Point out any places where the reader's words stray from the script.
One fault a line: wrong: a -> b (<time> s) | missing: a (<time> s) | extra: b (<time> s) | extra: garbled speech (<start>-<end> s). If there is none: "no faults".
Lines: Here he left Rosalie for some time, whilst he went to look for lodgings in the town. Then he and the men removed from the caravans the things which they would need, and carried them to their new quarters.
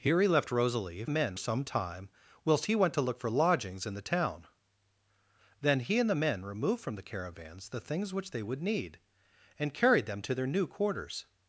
wrong: for -> men (1.1 s)